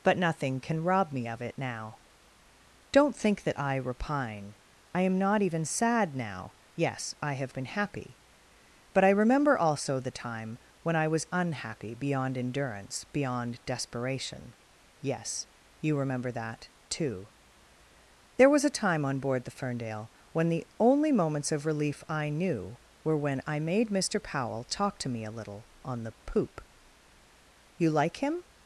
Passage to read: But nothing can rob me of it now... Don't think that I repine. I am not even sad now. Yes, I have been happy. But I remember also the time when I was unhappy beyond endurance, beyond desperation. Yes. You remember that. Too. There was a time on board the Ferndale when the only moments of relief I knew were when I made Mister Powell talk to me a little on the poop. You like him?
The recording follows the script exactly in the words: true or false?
true